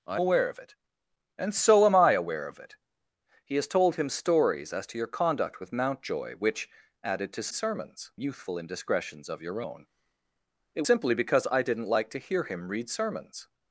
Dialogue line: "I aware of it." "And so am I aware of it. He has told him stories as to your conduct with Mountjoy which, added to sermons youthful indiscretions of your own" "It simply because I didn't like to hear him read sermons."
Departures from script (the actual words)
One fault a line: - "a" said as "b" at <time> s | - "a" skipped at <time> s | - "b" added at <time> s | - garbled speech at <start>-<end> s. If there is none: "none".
none